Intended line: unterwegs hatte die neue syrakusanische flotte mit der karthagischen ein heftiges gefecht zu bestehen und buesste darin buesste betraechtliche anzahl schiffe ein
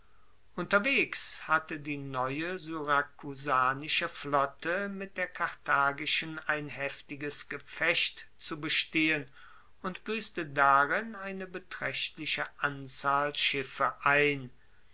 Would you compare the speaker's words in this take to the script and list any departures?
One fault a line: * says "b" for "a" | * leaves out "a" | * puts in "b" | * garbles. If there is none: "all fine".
* says "eine" for "buesste"